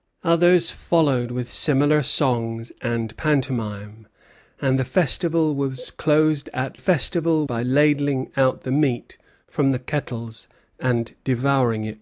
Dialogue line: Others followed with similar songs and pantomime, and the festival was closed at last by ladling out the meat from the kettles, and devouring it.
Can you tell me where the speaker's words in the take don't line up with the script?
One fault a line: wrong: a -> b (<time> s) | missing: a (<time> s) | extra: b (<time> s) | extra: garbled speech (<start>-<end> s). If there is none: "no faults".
wrong: last -> festival (6.7 s)